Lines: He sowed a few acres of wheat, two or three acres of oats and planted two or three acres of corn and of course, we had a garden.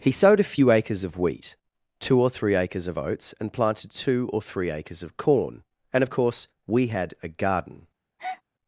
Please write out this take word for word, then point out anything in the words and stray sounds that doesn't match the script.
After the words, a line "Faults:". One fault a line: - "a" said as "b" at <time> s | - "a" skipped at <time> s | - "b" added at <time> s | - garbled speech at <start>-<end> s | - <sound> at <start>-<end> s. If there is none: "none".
He sowed a few acres of wheat, two or three acres of oats and planted two or three acres of corn and of course, we had a garden.
Faults:
- breath at 8.2-8.4 s